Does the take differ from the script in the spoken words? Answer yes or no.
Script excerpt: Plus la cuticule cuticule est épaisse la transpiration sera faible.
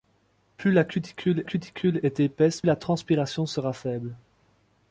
no